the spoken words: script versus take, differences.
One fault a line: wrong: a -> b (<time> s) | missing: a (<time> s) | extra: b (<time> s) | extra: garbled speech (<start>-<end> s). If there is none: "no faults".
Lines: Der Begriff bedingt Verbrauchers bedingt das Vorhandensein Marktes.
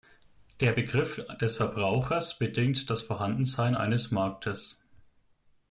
wrong: bedingt -> des (1.4 s)
extra: eines (3.8 s)